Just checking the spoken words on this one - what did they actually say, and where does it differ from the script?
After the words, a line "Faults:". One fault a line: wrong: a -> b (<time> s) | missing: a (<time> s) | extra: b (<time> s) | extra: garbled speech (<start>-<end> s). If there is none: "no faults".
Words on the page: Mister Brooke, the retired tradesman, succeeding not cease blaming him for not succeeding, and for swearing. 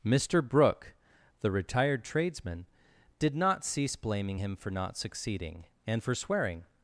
Mister Brooke, the retired tradesman, did not cease blaming him for not succeeding, and for swearing.
Faults:
wrong: succeeding -> did (3.2 s)